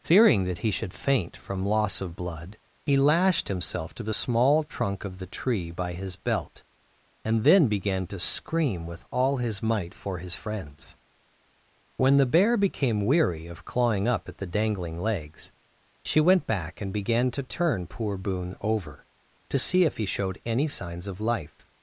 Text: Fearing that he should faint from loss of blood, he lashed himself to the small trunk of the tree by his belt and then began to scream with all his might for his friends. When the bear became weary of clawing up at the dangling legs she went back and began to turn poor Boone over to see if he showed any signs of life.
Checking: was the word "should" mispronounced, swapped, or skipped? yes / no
no